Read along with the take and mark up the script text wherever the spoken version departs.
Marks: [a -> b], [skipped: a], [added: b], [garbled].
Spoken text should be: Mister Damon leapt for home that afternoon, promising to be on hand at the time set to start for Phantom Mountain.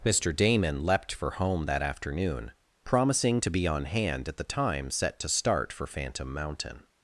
Mister Damon leapt for home that afternoon, promising to be on hand at the time set to start for Phantom Mountain.